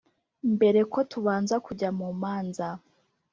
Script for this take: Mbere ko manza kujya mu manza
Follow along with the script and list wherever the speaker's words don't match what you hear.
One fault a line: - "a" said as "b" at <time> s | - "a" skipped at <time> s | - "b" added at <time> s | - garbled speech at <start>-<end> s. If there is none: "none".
- "manza" said as "tubanza" at 1.1 s